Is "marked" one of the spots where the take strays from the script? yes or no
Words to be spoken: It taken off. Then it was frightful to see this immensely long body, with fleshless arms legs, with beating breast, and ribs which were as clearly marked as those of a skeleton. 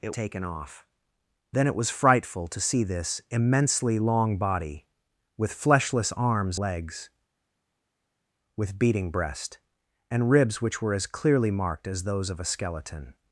no